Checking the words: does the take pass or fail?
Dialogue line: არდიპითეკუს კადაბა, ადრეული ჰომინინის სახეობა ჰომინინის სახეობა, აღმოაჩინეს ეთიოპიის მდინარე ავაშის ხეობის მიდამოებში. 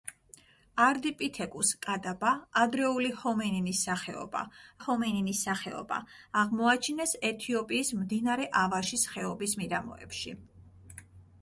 pass